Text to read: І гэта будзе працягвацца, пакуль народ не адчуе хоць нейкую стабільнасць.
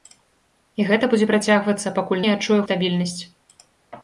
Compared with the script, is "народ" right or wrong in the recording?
wrong